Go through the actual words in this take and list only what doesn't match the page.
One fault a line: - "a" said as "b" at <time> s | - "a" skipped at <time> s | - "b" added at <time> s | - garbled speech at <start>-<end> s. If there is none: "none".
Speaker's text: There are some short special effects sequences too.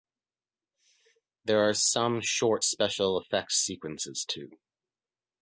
none